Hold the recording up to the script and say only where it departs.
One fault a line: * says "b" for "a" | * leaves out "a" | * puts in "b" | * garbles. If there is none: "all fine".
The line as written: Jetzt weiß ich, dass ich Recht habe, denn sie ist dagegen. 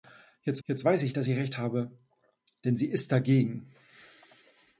* puts in "jetzt"